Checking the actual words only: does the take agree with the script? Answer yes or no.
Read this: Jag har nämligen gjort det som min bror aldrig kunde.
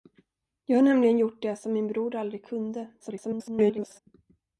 no